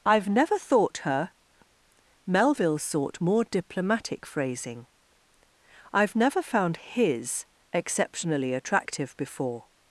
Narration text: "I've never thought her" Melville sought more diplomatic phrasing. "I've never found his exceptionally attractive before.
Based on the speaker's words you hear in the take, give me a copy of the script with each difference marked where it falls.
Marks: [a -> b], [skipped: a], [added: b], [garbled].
"I've never thought her" Melville sought more diplomatic phrasing. "I've never found his exceptionally attractive before.